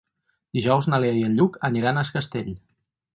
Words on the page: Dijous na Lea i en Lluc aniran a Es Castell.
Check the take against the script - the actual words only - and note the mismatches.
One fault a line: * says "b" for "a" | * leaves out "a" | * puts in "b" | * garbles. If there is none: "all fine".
all fine